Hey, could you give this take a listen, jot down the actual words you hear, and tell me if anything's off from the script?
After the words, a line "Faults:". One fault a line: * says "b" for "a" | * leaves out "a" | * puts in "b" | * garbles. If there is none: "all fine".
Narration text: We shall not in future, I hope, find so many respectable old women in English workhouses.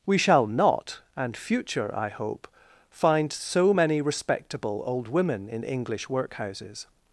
We shall not and future, I hope, find so many respectable old women in English workhouses.
Faults:
* says "and" for "in"